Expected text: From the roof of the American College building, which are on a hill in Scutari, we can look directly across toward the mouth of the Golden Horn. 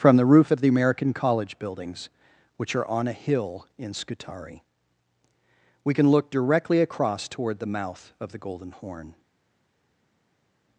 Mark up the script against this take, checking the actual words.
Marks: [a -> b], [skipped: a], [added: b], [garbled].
From the roof of the American College [building, -> buildings] which are on a hill in Scutari, we can look directly across toward the mouth of the Golden Horn.